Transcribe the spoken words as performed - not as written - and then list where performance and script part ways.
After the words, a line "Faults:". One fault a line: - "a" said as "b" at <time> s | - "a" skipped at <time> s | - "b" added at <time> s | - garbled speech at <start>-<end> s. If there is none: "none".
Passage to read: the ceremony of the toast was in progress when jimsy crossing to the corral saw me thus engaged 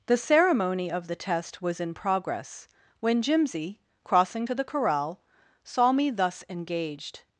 the ceremony of the test was in progress when jimsy crossing to the corral saw me thus engaged
Faults:
- "toast" said as "test" at 1.1 s